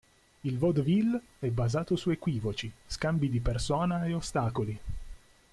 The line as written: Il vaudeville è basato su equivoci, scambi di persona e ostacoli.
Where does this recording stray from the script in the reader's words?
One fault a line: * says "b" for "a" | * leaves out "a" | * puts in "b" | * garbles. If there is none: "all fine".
all fine